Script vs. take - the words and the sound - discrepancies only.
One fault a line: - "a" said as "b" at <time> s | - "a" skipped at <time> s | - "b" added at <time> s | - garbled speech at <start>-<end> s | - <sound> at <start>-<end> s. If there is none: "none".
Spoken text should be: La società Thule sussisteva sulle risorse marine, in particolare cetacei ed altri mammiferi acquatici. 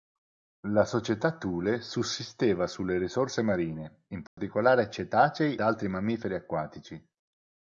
- dropout at 4.3-4.4 s
- "ed" skipped at 5.6 s